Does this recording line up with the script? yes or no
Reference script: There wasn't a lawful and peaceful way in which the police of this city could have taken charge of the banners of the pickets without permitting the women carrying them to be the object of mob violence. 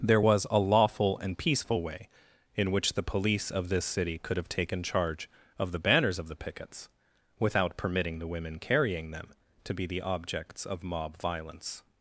no